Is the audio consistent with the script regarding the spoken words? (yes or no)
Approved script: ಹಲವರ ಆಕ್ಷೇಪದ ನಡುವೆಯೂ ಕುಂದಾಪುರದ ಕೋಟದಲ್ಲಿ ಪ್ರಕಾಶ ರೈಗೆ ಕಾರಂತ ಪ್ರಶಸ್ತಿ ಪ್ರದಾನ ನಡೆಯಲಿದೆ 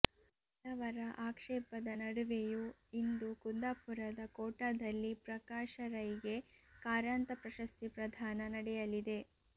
no